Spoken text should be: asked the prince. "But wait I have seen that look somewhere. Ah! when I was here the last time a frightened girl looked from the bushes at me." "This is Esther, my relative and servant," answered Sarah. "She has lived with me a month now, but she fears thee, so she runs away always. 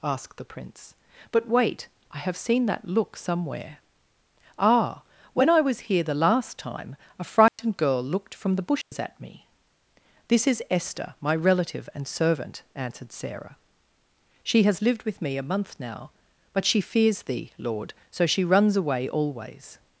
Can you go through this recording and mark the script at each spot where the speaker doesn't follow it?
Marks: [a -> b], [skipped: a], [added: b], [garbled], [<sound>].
asked the prince. "But wait I have seen that look somewhere. Ah! when I was here the last time a frightened [dropout] girl looked from the bushes [dropout] at me." "This is Esther, my relative and servant," answered Sarah. "She has lived with me a month now, but she fears thee, [added: lord] so she runs away always.